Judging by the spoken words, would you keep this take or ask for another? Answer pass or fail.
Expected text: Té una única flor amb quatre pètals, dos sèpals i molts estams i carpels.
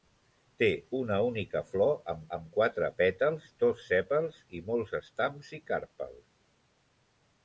fail